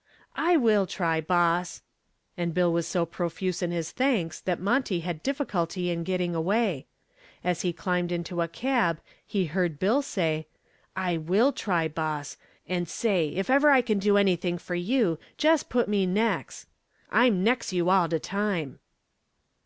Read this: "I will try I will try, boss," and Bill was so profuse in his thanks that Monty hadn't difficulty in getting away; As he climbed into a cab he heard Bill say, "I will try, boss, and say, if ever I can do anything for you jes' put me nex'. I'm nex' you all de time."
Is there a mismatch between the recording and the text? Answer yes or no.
yes